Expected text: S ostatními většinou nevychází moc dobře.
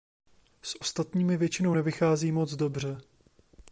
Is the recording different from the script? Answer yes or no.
no